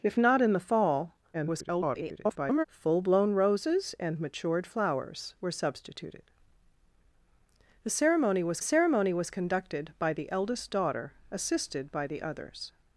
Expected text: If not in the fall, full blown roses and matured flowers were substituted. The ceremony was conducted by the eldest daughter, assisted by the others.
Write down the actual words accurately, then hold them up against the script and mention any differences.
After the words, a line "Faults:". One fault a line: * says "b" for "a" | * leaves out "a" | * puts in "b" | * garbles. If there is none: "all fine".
If not in the fall, [garbled] full blown roses and matured flowers were substituted. The ceremony was ceremony was conducted by the eldest daughter, assisted by the others.
Faults:
* garbles
* puts in "ceremony was"